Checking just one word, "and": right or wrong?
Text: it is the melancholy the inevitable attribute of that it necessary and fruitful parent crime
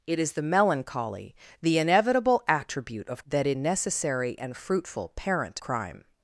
right